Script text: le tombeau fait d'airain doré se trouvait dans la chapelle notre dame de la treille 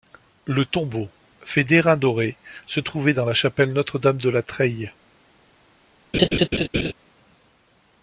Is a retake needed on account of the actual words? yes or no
no